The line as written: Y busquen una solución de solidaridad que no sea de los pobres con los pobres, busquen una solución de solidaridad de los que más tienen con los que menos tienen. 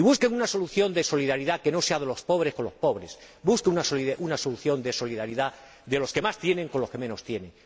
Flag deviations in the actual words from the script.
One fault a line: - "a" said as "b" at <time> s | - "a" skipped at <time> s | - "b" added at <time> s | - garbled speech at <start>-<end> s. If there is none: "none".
none